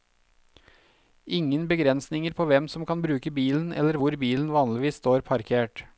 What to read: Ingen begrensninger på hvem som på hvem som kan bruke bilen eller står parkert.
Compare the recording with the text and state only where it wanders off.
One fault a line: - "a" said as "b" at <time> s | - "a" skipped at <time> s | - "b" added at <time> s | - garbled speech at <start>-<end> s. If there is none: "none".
- "på hvem som kan bruke" said as "kan bruke bilen eller hvor" at 2.9 s
- "eller" said as "vanligvis" at 4.5 s